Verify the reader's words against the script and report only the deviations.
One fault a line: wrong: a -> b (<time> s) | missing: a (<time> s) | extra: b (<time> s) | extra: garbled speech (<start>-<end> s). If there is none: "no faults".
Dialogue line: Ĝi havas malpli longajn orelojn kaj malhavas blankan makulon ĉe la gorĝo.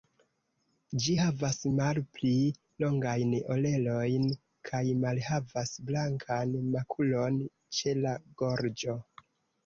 no faults